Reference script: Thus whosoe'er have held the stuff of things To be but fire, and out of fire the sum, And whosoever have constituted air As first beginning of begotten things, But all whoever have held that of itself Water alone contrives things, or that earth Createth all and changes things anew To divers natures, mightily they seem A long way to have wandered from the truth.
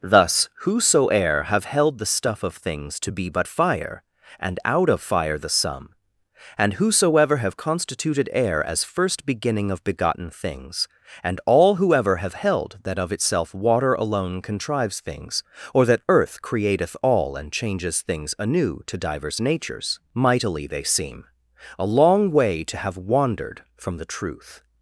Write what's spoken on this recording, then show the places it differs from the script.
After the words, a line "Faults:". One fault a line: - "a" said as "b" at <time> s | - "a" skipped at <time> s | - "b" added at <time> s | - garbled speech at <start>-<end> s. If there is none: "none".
Thus whosoe'er have held the stuff of things To be but fire, and out of fire the sum, And whosoever have constituted air As first beginning of begotten things, And all whoever have held that of itself Water alone contrives things, or that earth Createth all and changes things anew To divers natures, mightily they seem A long way to have wandered from the truth.
Faults:
- "But" said as "And" at 11.2 s